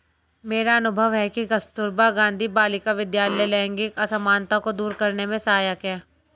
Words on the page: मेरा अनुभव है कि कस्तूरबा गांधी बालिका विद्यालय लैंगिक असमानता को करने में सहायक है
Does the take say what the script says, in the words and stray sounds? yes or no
no